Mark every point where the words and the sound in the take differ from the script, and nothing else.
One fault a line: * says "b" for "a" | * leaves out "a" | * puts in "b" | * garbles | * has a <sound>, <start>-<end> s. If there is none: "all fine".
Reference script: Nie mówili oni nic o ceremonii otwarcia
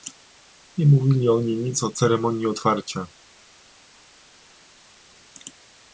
all fine